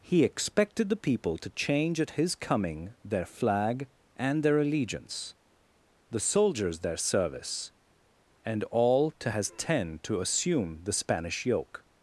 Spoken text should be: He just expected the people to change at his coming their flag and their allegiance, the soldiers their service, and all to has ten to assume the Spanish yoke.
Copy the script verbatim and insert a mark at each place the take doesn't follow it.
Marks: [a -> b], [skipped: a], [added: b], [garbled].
He [skipped: just] expected the people to change at his coming their flag and their allegiance, the soldiers their service, and all to has ten to assume the Spanish yoke.